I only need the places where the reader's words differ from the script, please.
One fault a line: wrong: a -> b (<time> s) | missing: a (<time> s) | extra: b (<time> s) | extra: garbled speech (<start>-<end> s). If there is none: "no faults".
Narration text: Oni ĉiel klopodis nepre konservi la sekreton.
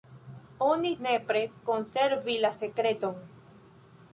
missing: ĉiel klopodis (0.9 s)